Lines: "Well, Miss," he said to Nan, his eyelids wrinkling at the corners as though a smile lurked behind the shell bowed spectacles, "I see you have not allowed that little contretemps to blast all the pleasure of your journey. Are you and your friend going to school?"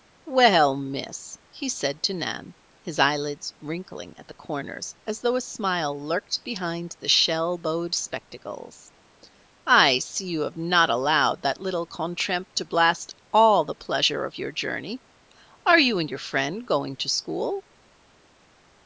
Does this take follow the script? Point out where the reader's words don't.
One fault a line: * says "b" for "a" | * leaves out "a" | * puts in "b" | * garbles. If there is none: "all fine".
all fine